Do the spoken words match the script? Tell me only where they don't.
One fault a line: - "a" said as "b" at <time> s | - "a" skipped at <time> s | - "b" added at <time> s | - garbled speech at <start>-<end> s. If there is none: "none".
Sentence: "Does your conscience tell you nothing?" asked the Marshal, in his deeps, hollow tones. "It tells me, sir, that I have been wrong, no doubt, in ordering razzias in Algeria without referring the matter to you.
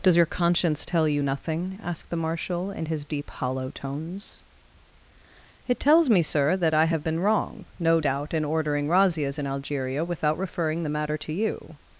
- "deeps" said as "deep" at 3.0 s